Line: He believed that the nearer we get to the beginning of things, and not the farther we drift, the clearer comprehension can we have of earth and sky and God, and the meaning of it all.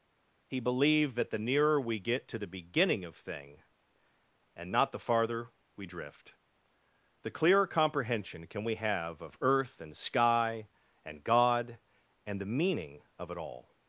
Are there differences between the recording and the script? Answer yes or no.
yes